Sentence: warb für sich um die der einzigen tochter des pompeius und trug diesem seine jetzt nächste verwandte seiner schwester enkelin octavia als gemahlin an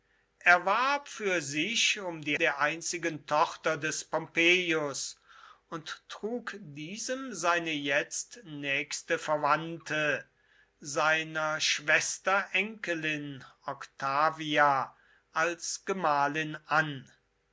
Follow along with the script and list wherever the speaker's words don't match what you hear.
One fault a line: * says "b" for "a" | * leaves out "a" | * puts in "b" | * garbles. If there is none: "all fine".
all fine